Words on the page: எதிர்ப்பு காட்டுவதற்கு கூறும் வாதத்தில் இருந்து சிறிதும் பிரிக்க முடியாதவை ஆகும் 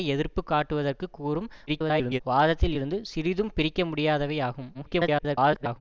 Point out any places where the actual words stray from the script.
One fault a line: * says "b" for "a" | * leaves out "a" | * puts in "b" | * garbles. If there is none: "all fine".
* garbles
* garbles